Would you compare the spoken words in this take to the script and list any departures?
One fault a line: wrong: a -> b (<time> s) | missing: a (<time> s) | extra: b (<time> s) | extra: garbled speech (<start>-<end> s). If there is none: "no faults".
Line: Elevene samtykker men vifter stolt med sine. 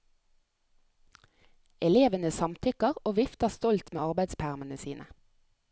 wrong: men -> og (3.0 s)
extra: arbeidspermene (4.0 s)